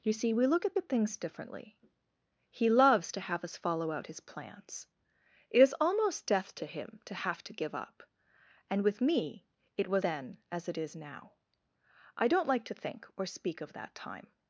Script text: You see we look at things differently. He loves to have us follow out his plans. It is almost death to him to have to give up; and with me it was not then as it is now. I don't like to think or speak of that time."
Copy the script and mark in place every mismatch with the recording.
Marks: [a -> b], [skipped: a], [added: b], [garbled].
You see we look at [added: at] things differently. He loves to have us follow out his plans. It is almost death to him to have to give up; and with me it was [skipped: not] then as it is now. I don't like to think or speak of that time."